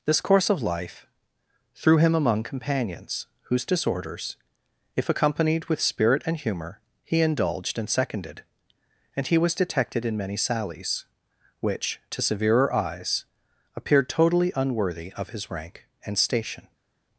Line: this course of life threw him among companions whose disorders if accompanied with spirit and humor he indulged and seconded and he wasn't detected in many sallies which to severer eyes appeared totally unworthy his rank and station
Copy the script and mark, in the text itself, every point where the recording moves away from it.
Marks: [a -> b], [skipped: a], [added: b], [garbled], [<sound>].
this course of life threw him among companions whose disorders if accompanied with spirit and humor he indulged and seconded and he [wasn't -> was] detected in many sallies which to severer eyes appeared totally unworthy [added: of] his rank and station